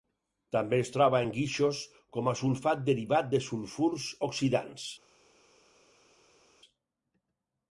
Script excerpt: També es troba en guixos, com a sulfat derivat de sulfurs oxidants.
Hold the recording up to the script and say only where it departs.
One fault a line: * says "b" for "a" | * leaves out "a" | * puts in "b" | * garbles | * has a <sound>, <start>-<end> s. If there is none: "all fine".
all fine